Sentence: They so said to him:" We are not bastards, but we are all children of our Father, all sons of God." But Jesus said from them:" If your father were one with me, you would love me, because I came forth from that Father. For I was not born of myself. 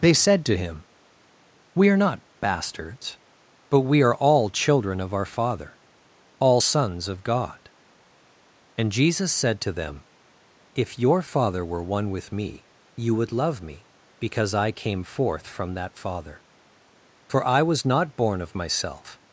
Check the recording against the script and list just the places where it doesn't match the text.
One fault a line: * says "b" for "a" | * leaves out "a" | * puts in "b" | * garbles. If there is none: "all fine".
* leaves out "so"
* says "And" for "But"
* says "to" for "from"